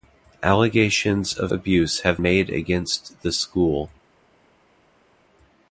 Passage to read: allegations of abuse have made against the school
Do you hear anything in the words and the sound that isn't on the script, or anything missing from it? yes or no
no